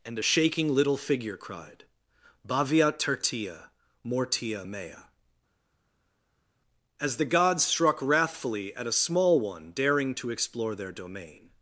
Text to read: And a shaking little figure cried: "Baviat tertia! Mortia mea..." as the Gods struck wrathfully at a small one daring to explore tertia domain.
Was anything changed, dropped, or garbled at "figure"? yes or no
no